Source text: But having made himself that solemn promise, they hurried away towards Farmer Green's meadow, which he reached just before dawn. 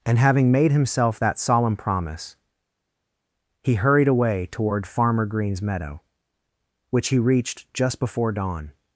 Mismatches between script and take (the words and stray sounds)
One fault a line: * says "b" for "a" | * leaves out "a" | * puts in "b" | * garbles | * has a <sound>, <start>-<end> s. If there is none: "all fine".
* says "And" for "But"
* says "he" for "they"
* says "toward" for "towards"